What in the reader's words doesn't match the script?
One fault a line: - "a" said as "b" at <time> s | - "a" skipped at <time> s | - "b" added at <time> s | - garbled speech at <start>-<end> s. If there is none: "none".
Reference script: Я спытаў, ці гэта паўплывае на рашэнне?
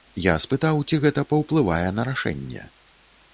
none